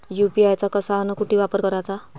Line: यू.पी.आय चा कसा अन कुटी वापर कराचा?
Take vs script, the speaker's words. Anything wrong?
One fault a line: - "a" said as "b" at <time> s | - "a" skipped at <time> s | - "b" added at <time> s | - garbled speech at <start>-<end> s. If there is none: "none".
none